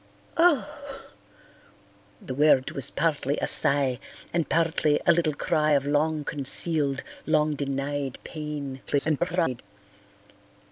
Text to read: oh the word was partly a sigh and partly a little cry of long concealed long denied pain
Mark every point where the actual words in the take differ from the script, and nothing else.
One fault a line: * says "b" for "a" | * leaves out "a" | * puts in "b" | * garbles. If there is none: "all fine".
* garbles